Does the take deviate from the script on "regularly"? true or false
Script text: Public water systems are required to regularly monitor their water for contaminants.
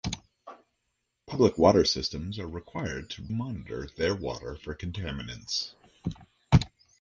true